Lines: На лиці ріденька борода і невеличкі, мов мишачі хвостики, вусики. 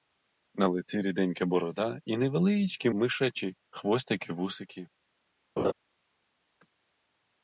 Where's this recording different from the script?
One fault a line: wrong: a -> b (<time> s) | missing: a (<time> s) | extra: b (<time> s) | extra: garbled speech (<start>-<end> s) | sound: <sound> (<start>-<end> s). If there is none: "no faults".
missing: мов (2.9 s)
sound: laugh (5.6-5.7 s)